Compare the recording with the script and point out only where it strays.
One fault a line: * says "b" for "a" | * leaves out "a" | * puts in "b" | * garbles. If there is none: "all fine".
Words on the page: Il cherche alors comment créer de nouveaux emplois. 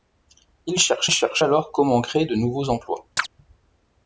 * puts in "cherche"